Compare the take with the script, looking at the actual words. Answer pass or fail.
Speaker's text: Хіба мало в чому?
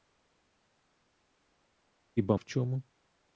fail